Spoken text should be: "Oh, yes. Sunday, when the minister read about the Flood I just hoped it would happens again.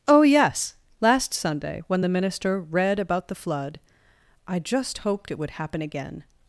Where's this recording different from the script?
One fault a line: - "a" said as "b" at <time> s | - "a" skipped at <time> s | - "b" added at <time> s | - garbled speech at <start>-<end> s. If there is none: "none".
- "Last" added at 1.0 s
- "happens" said as "happen" at 5.5 s